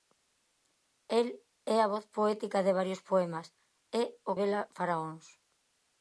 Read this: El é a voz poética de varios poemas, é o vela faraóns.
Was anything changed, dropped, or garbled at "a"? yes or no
no